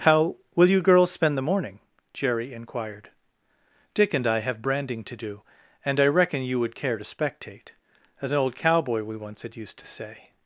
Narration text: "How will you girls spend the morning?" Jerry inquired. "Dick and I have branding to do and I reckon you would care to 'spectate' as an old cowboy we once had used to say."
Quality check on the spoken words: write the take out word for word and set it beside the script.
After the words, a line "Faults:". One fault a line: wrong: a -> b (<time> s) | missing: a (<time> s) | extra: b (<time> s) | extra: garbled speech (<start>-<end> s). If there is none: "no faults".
"How will you girls spend the morning?" Jerry inquired. "Dick and I have branding to do and I reckon you would care to 'spectate' as an old cowboy we once had used to say."
Faults:
no faults